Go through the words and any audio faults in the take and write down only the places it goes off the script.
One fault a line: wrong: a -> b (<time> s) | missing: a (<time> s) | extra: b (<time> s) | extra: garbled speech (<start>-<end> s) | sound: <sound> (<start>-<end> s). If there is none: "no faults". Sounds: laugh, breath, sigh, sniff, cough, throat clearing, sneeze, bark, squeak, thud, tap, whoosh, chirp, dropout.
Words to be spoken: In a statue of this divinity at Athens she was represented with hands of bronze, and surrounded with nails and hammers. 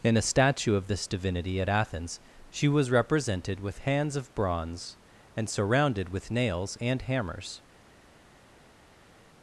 no faults